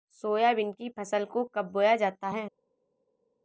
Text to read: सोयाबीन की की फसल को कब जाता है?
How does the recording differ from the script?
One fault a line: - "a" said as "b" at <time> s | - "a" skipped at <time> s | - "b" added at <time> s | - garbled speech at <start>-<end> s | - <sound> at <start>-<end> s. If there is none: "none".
- "की" skipped at 0.9 s
- "बोया" added at 1.7 s